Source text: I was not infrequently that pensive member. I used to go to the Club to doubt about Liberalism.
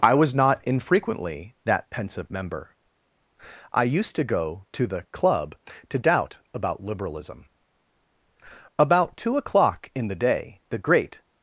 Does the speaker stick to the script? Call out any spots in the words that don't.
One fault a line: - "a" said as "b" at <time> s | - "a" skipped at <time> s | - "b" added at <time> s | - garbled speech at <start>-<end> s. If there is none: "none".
- "About two o'clock in the day the great" added at 8.8 s